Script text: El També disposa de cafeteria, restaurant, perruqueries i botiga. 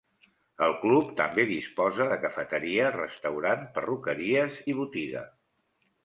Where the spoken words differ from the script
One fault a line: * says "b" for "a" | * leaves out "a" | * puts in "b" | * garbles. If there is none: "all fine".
* puts in "Club"